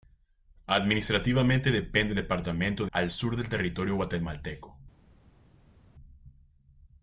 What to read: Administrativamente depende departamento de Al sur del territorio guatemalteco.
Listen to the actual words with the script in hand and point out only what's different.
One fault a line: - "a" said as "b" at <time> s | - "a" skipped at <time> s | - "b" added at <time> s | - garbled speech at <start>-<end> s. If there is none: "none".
none